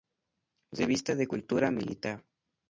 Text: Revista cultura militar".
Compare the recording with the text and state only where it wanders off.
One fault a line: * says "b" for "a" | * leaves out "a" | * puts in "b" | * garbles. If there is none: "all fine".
* puts in "de"